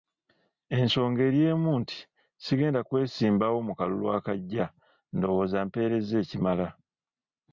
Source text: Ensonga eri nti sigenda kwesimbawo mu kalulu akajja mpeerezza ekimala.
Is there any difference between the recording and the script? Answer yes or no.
yes